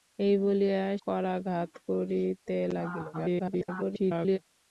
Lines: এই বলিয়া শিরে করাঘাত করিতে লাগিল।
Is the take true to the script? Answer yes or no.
no